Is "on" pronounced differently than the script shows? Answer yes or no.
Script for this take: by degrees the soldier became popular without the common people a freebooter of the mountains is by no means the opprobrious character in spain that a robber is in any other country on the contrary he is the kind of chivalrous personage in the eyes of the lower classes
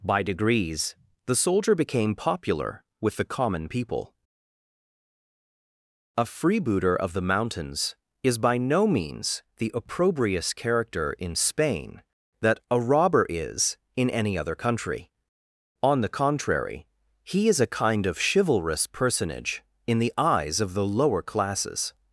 no